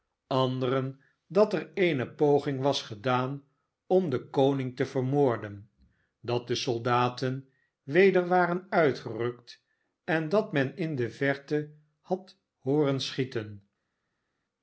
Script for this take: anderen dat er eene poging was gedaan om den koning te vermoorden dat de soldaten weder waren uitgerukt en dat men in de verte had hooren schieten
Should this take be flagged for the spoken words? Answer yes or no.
no